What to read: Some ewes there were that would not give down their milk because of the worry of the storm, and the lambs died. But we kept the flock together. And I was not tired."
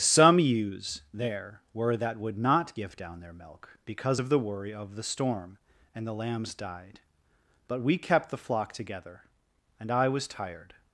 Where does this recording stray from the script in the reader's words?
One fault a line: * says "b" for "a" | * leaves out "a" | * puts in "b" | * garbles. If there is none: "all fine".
* leaves out "not"